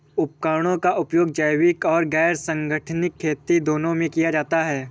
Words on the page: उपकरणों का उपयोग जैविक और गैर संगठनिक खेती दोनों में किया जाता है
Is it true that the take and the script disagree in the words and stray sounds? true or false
false